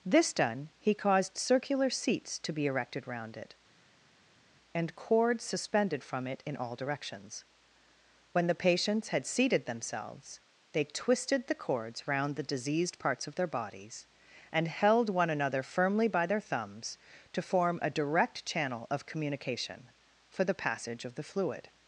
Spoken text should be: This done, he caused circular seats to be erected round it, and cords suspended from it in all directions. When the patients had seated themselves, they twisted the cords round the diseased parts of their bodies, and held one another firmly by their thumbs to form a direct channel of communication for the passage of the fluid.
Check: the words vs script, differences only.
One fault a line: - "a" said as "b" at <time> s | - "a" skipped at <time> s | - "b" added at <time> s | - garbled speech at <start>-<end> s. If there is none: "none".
none